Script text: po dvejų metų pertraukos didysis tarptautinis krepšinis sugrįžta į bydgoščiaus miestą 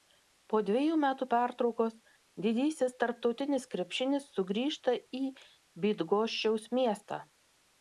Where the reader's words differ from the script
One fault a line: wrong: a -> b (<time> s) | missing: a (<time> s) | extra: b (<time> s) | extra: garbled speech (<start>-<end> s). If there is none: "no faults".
no faults